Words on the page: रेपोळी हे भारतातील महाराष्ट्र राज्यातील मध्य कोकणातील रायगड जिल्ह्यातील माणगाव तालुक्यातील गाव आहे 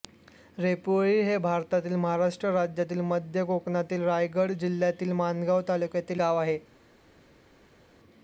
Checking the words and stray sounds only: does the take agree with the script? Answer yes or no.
yes